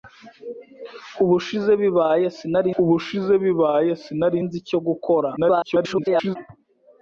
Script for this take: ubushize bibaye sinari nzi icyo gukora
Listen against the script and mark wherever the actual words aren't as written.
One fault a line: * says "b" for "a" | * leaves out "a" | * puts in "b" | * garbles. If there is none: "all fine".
* puts in "ubushize bibaye sinari"
* garbles